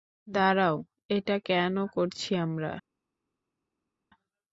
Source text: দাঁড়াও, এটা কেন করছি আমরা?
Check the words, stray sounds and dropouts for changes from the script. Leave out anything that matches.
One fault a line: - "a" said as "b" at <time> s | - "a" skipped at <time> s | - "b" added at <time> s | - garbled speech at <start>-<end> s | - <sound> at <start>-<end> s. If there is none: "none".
none